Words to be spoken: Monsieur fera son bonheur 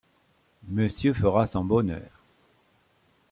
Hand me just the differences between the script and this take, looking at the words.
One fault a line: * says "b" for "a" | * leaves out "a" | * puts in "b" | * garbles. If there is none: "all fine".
all fine